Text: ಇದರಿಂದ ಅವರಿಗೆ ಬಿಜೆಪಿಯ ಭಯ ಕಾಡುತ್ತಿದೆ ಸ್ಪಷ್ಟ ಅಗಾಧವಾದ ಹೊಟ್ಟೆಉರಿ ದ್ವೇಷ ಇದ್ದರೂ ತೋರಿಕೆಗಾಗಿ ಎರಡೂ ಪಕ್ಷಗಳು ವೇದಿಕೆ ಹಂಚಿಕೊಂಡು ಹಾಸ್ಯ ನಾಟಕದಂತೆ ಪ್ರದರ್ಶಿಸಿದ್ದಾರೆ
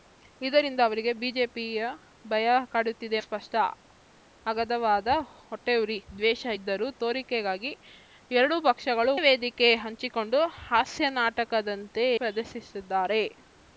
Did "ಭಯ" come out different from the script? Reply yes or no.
no